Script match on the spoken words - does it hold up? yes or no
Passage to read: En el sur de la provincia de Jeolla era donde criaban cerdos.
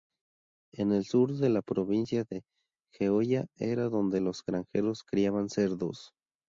no